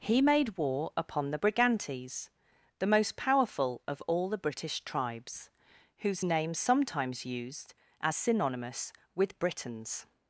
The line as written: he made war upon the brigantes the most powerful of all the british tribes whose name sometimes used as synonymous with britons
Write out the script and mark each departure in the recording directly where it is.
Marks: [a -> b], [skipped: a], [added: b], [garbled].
he made war upon the brigantes the most powerful of all the british tribes whose name sometimes used as synonymous with britons